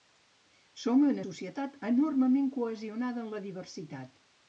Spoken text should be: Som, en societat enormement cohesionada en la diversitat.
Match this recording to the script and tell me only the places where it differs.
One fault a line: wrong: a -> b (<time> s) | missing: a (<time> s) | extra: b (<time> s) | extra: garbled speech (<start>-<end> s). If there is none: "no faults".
no faults